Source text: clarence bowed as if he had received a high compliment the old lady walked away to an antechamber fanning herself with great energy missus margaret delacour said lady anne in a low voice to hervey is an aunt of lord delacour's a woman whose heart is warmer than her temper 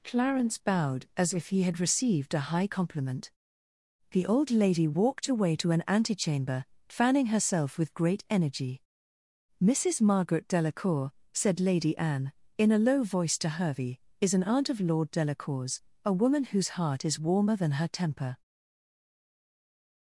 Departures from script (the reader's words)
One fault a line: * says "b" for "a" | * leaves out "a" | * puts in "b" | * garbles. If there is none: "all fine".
all fine